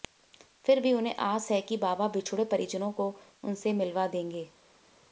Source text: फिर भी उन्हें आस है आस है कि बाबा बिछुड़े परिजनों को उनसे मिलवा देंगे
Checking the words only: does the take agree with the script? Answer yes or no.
no